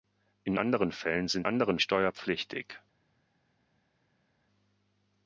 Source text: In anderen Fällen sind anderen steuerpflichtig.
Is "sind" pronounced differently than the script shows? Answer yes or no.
no